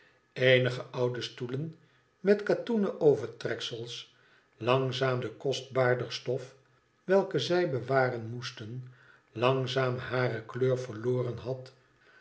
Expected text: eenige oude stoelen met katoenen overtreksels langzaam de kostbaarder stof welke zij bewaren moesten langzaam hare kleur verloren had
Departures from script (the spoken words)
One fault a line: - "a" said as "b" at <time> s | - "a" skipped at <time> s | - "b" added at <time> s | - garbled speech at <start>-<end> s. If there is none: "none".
none